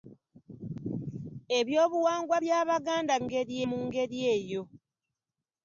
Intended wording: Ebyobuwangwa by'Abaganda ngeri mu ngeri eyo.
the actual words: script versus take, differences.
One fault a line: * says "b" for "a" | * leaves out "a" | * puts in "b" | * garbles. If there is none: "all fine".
all fine